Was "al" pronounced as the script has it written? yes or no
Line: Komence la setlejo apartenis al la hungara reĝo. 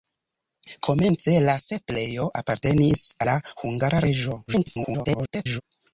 no